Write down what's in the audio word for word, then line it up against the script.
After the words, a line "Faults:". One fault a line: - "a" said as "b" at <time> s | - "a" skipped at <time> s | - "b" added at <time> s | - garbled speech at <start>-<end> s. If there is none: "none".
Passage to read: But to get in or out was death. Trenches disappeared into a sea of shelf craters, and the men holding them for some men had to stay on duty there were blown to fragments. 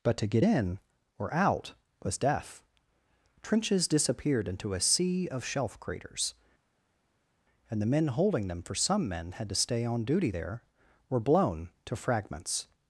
But to get in or out was death. Trenches disappeared into a sea of shelf craters, and the men holding them for some men had to stay on duty there were blown to fragments.
Faults:
none